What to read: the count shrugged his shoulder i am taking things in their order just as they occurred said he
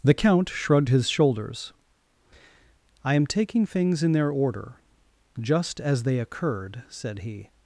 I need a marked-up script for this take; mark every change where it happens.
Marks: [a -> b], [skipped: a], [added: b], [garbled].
the count shrugged his [shoulder -> shoulders] i am taking things in their order just as they occurred said he